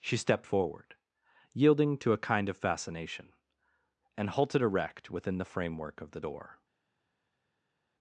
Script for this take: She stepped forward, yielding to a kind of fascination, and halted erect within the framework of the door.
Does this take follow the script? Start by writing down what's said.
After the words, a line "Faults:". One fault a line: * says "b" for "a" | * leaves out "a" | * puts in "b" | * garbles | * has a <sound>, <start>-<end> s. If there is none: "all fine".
She stepped forward, yielding to a kind of fascination, and halted erect within the framework of the door.
Faults:
all fine